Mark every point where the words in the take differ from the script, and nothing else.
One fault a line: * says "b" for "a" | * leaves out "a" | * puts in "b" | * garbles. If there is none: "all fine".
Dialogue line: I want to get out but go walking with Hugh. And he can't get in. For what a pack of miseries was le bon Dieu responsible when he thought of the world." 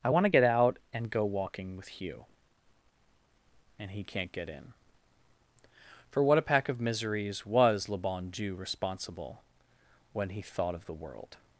* says "and" for "but"